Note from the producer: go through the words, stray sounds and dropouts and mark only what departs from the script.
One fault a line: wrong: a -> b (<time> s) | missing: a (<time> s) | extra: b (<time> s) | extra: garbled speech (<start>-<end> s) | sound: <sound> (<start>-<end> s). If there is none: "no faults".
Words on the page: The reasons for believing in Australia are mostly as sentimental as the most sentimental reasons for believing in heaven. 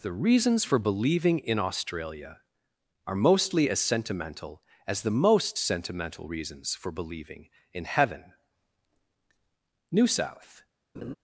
extra: New South (9.9 s)
sound: laugh (10.9-11.2 s)